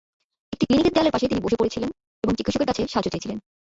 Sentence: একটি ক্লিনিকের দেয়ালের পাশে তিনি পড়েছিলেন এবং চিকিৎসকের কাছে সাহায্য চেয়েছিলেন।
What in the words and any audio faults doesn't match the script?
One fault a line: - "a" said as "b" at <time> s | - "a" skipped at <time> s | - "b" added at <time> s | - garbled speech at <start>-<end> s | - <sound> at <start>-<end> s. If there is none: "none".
- "বসে" added at 1.4 s